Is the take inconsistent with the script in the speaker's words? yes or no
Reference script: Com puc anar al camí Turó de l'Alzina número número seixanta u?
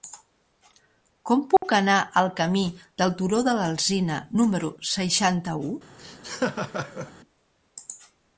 yes